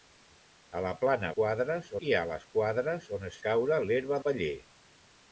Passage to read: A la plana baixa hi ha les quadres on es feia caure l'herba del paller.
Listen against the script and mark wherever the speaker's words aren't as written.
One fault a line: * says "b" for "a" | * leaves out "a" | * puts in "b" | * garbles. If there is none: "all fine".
* says "quadres" for "baixa"
* leaves out "feia"
* leaves out "del"